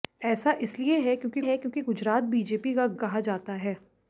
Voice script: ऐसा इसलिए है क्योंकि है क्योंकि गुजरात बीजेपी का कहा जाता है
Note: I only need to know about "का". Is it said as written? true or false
true